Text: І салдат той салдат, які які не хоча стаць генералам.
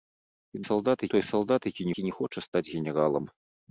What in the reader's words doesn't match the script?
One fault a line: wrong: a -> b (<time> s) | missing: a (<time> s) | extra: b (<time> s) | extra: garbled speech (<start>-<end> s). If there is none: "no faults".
no faults